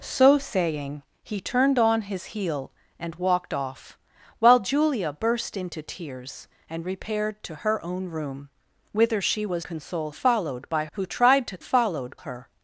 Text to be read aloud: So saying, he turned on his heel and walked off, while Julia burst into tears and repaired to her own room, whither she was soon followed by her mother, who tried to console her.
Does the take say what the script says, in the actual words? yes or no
no